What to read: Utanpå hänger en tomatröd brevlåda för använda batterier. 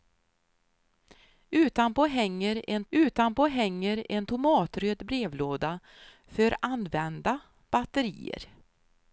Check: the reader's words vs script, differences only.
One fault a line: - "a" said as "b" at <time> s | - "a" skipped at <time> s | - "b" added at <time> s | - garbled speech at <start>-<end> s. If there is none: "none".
- "utanpå hänger en" added at 2.9 s